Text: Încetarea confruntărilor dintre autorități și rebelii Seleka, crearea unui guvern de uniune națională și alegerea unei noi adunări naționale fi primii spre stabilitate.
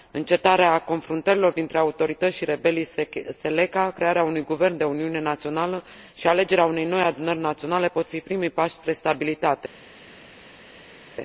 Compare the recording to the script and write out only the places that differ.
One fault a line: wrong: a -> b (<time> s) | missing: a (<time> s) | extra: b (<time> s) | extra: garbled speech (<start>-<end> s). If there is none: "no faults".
extra: pot (7.8 s)
extra: pași (8.5 s)